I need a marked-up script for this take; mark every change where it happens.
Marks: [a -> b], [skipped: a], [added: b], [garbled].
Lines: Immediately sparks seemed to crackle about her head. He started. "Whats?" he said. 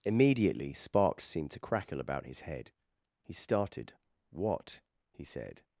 Immediately sparks seemed to crackle about [her -> his] head. He started. ["Whats?" -> What] he said.